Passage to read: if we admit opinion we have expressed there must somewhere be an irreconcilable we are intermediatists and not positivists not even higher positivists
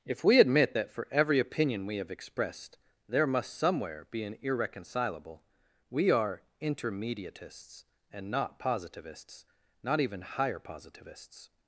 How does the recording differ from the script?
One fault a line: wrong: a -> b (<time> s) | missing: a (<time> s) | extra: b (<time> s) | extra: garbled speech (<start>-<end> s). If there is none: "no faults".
extra: that for every (0.7 s)